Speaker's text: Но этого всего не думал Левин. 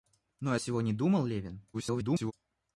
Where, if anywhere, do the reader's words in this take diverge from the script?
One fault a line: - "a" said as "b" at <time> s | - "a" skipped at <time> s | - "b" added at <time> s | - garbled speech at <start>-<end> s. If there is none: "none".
- "этого" skipped at 0.6 s
- garbled speech at 1.7-2.3 s